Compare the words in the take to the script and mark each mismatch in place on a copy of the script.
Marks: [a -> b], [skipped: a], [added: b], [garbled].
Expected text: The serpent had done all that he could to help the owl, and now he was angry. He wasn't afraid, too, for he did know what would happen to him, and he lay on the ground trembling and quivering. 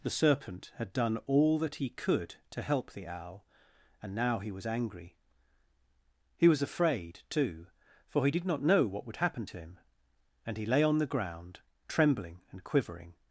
The serpent had done all that he could to help the owl, and now he was angry. He [wasn't -> was] afraid, too, for he did [added: not] know what would happen to him, and he lay on the ground trembling and quivering.